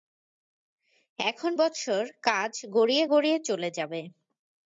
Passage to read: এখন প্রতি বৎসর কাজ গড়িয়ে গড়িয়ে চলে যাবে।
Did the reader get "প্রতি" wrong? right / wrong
wrong